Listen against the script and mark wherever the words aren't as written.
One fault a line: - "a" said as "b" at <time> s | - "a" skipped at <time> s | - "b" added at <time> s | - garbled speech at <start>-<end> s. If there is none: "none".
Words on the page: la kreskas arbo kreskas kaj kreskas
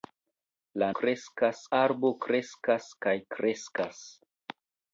none